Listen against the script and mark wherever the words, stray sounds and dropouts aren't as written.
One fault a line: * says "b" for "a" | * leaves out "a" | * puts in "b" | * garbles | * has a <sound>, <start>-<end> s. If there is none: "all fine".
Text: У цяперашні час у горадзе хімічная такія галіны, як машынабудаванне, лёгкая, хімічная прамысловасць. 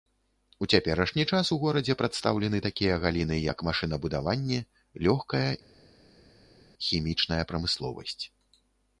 * says "прадстаўлены" for "хімічная"